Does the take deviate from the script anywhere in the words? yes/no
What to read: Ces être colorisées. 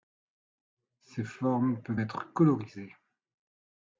yes